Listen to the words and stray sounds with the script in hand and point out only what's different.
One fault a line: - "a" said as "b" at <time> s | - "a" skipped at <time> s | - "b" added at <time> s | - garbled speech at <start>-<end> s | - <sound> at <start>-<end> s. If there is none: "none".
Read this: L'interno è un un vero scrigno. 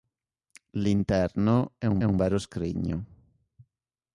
none